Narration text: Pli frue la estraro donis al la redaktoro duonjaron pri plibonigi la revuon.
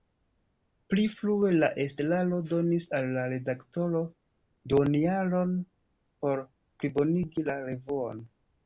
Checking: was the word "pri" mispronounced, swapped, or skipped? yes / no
yes